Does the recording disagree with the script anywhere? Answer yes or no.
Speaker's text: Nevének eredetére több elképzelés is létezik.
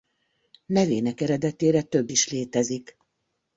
yes